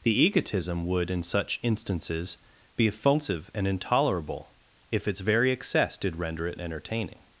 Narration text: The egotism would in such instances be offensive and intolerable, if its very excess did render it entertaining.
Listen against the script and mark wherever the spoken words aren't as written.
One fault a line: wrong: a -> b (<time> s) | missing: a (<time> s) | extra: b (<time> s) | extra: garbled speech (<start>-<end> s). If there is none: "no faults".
no faults